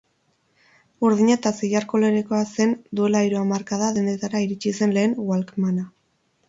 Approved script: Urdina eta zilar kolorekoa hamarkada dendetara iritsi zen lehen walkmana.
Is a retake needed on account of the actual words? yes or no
yes